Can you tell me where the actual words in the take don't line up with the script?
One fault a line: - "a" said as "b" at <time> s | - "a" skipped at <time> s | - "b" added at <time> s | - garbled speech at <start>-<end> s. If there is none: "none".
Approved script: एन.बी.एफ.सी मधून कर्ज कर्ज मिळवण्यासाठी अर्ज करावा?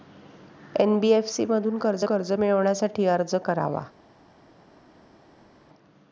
none